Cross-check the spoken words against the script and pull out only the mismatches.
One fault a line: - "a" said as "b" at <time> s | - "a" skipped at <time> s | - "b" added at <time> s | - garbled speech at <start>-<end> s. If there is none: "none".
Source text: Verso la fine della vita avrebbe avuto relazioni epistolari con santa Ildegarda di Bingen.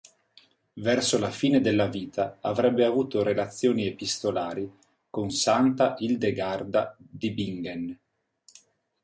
none